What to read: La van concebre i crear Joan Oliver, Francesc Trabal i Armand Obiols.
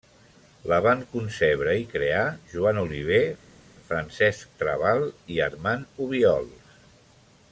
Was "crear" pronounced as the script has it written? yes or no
yes